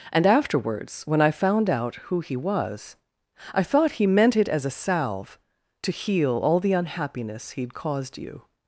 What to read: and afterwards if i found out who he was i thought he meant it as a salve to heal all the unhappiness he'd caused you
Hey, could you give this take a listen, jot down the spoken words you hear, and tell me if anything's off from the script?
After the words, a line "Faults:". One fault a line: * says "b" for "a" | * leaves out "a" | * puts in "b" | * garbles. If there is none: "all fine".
and afterwards when i found out who he was i thought he meant it as a salve to heal all the unhappiness he'd caused you
Faults:
* says "when" for "if"